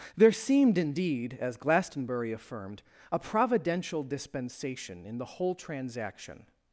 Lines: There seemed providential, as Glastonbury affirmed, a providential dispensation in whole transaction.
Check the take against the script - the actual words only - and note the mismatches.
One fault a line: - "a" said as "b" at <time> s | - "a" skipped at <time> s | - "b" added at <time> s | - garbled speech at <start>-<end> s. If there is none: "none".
- "providential" said as "indeed" at 0.8 s
- "the" added at 5.2 s